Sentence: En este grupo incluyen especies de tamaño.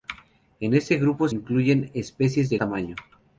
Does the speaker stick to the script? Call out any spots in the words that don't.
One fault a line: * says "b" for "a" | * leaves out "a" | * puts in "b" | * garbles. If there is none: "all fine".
all fine